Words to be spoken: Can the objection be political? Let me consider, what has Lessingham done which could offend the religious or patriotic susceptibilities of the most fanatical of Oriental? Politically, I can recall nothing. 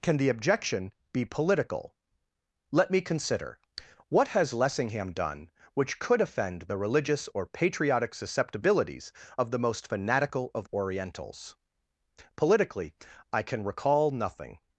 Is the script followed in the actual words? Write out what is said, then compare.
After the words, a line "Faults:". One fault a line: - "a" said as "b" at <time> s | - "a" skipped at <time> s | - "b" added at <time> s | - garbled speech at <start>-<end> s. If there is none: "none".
Can the objection be political? Let me consider, what has Lessingham done which could offend the religious or patriotic susceptibilities of the most fanatical of Orientals? Politically, I can recall nothing.
Faults:
- "Oriental" said as "Orientals" at 10.7 s